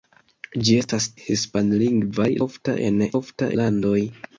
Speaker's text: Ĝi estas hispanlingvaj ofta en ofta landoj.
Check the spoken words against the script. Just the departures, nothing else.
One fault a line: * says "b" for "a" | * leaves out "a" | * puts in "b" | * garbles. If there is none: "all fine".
all fine